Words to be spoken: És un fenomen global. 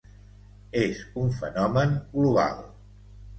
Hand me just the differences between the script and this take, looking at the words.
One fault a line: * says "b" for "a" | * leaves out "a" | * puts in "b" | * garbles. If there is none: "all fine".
all fine